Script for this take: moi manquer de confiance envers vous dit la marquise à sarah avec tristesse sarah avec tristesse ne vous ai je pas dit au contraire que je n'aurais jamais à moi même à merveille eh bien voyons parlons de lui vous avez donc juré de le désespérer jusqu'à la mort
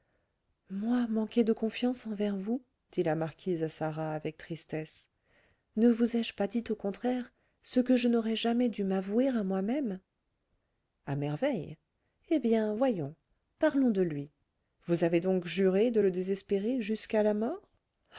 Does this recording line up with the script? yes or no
no